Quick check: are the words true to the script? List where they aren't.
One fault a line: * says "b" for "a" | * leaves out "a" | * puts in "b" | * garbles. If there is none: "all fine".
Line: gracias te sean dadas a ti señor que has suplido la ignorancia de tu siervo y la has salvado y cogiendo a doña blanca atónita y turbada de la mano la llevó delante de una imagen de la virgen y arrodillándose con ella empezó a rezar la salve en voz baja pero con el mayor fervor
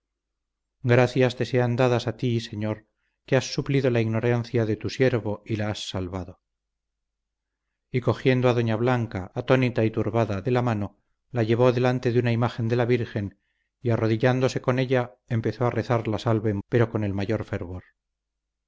* leaves out "voz baja"